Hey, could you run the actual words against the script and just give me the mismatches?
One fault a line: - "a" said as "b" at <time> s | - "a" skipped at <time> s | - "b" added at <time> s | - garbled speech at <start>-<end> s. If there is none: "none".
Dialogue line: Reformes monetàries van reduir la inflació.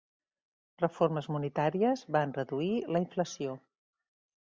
none